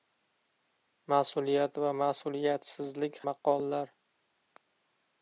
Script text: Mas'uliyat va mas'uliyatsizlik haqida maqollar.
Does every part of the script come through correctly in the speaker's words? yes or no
no